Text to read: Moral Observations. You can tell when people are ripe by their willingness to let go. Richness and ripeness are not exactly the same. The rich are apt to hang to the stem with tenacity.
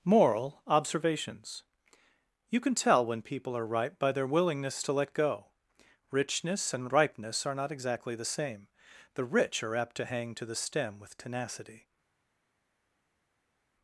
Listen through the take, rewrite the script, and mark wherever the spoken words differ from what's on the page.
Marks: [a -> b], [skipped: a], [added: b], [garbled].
Moral Observations. You can tell when people are ripe by their willingness to let go. Richness and ripeness are not exactly the same. The rich are apt to hang to the stem with tenacity.